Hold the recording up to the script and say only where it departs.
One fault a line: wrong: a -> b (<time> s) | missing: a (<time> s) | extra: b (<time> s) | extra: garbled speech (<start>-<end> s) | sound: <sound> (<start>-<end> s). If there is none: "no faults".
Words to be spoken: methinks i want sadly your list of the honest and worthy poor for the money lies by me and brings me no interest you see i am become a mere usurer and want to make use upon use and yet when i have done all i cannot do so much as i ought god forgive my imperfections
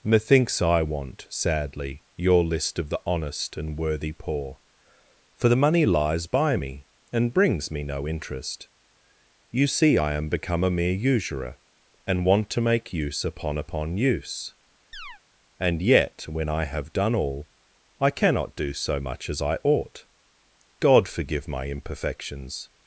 extra: upon (13.6 s)
sound: chirp (14.9-15.2 s)